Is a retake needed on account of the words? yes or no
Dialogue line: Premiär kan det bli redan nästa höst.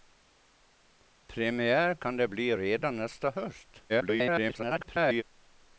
yes